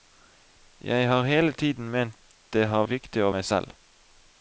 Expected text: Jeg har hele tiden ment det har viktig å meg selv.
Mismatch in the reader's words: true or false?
false